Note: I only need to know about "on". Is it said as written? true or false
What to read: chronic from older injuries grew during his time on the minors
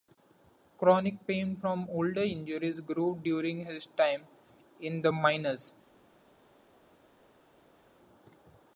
false